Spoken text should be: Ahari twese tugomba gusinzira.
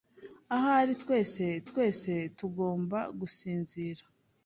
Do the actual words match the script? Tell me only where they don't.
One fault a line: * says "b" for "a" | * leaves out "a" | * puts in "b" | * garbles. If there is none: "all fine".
* puts in "twese"